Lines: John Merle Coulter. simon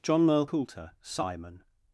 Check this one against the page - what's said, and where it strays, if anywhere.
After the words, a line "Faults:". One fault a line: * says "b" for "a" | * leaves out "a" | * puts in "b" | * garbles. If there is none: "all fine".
John Merle Coulter. simon
Faults:
all fine